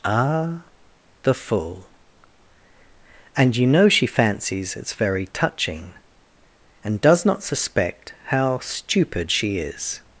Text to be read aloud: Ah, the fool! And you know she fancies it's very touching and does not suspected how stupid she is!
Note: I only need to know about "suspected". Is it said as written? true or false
false